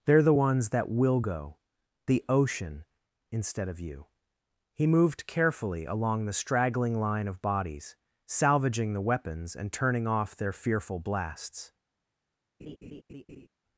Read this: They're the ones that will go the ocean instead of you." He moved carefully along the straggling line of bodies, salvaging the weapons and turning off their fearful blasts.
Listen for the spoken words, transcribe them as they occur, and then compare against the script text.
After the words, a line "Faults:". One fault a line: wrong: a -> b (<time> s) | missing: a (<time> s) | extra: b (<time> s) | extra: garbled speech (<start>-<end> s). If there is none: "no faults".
They're the ones that will go the ocean instead of you." He moved carefully along the straggling line of bodies, salvaging the weapons and turning off their fearful blasts.
Faults:
no faults